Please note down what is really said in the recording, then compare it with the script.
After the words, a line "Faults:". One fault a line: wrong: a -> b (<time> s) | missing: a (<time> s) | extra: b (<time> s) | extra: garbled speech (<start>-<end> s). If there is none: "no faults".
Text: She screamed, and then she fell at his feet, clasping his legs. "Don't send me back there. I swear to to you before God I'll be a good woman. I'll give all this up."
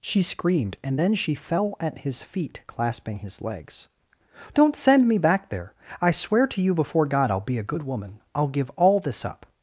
She screamed, and then she fell at his feet, clasping his legs. "Don't send me back there. I swear to you before God I'll be a good woman. I'll give all this up."
Faults:
missing: to (6.6 s)